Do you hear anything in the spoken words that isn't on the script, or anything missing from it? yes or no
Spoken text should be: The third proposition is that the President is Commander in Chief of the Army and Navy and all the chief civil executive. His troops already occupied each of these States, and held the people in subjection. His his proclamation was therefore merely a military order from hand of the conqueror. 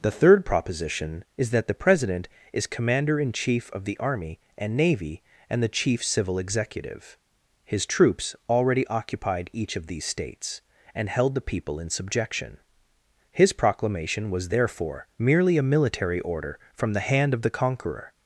yes